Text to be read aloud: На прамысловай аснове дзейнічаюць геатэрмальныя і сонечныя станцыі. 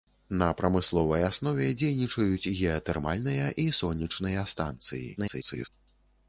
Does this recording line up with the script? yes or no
no